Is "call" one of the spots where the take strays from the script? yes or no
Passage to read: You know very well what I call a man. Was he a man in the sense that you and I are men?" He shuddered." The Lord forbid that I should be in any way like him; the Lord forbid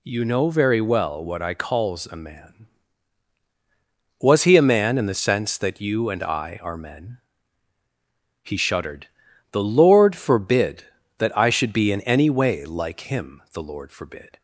yes